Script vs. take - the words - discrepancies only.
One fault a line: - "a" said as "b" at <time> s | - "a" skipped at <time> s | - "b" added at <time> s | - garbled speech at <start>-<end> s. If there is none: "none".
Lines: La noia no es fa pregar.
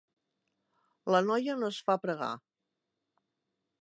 none